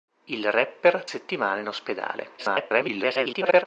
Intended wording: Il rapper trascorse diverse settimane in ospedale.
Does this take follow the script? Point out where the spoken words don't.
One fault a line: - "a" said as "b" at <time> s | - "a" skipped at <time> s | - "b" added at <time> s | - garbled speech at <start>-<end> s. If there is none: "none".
- "trascorse diverse" skipped at 1.1 s
- garbled speech at 2.4-3.7 s